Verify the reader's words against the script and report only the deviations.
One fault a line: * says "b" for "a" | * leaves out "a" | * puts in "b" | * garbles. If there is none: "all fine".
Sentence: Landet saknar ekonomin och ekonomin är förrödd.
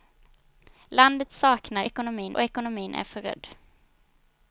all fine